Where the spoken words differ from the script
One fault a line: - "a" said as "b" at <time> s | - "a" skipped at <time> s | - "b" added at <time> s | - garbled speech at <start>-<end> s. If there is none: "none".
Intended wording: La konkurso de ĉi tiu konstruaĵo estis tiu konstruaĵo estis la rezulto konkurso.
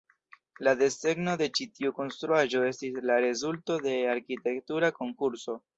- "konkurso" said as "desegno" at 0.8 s
- "tiu konstruaĵo estis la rezulto" said as "la rezulto de arkitektura" at 3.1 s